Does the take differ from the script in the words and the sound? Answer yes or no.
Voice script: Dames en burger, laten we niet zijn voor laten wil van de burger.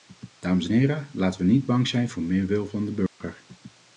yes